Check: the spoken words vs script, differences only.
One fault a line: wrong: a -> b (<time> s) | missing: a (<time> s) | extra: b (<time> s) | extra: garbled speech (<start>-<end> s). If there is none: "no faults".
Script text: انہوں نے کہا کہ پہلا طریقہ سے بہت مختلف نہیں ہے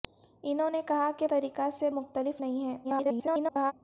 missing: پہلا (1.3 s)
missing: بہت (1.9 s)
extra: garbled speech (2.8-3.7 s)